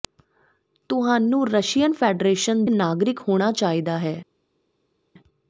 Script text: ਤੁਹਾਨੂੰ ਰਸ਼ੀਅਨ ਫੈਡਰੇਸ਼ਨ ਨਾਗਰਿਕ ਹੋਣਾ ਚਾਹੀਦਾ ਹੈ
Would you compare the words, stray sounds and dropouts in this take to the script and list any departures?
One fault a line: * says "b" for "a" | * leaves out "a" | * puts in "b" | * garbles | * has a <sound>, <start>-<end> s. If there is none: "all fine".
all fine